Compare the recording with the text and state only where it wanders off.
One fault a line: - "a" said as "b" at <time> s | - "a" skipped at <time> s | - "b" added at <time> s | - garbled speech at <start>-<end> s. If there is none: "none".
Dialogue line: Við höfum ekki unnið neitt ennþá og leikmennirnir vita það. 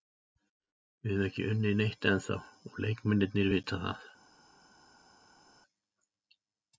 none